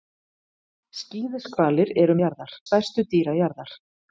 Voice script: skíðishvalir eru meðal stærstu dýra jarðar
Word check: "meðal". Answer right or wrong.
wrong